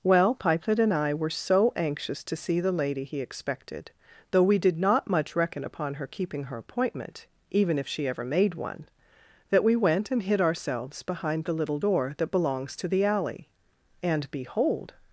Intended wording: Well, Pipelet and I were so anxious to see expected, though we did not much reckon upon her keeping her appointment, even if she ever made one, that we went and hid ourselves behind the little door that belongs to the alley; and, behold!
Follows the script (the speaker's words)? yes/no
no